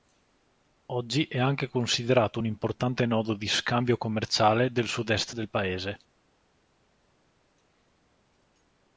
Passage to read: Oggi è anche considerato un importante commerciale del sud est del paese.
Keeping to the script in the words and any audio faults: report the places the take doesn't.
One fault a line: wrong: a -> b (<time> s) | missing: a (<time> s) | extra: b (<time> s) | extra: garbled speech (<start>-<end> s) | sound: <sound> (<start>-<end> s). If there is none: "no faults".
extra: nodo di scambio (3.0 s)